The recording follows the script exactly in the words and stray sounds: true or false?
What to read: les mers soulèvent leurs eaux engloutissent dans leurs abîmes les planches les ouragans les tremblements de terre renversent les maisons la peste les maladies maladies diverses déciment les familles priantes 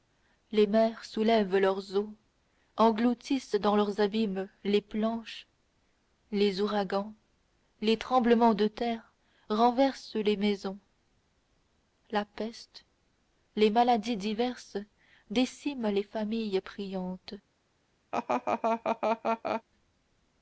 false